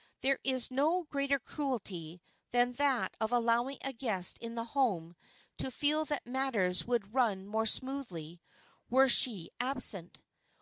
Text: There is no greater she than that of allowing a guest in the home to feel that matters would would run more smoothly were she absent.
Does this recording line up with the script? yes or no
no